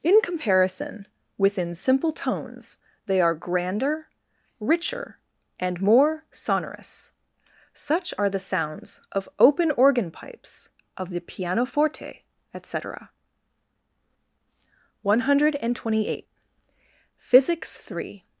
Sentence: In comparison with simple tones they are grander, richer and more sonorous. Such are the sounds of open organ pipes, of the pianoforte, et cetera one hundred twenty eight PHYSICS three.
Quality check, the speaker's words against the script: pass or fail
fail